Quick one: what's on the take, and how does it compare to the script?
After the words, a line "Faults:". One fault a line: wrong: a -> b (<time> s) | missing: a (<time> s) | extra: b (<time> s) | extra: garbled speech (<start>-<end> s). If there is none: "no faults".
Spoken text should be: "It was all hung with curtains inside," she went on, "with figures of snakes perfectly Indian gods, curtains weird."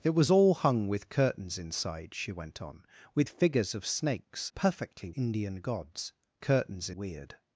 "It was all hung with curtains inside," she went on, "with figures of snakes perfectly Indian gods, curtains weird."
Faults:
no faults